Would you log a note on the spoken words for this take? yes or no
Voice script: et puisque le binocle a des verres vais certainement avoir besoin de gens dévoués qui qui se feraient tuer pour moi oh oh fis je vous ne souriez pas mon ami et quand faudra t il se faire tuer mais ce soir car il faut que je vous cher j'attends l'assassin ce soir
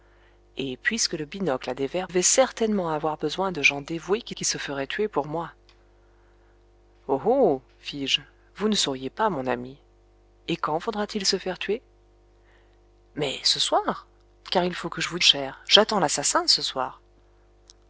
no